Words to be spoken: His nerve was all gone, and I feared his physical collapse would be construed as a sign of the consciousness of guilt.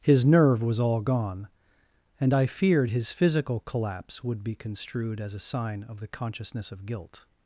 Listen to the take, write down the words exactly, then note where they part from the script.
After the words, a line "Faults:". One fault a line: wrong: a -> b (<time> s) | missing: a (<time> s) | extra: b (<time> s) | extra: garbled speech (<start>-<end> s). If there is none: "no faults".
His nerve was all gone, and I feared his physical collapse would be construed as a sign of the consciousness of guilt.
Faults:
no faults